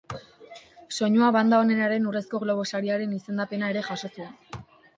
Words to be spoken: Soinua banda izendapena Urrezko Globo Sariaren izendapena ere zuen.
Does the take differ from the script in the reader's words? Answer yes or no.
yes